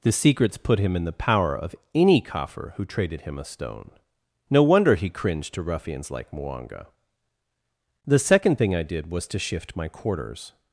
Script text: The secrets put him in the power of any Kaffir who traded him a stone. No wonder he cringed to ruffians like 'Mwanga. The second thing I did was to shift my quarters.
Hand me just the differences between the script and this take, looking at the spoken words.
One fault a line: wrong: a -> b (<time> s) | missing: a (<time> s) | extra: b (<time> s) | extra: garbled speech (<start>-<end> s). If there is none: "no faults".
no faults